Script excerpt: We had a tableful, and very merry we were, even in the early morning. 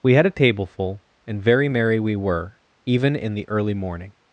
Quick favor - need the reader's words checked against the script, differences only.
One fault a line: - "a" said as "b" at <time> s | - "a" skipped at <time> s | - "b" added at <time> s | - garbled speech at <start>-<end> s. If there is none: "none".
none